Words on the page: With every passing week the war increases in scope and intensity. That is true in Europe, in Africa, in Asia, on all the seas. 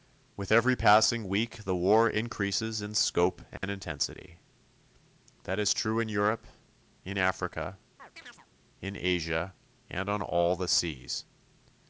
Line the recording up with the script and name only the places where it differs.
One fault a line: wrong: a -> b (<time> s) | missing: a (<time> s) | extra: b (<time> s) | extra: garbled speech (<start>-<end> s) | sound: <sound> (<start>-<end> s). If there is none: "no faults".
sound: dropout (3.6-3.6 s)
sound: chirp (8.0-8.5 s)
extra: and (9.9 s)